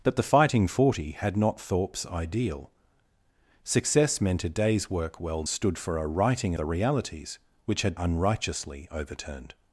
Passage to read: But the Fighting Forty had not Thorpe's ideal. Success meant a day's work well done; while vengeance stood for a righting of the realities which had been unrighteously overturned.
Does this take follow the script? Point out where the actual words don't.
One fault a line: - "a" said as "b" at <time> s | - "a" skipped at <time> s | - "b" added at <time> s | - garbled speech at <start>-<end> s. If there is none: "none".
- "done while vengeance" skipped at 5.4 s
- "of" skipped at 6.5 s
- "been" skipped at 7.9 s